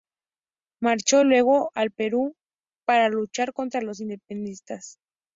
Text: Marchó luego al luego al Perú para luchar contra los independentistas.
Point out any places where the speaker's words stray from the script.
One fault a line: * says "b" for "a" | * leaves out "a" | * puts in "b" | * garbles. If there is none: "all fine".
* leaves out "luego al"